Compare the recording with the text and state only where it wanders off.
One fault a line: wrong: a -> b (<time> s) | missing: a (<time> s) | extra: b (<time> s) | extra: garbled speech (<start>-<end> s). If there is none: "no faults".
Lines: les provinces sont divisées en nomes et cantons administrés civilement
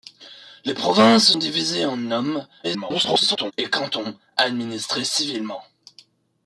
missing: sont (1.3 s)
extra: garbled speech (2.6-3.5 s)